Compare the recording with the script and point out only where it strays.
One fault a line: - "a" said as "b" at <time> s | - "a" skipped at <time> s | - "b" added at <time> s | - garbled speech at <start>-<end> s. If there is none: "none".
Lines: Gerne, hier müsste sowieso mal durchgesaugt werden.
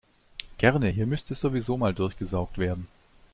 none